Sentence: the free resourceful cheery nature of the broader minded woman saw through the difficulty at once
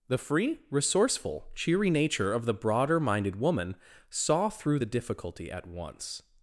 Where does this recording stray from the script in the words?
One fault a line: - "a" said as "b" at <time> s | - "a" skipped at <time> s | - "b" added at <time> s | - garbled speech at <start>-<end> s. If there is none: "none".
none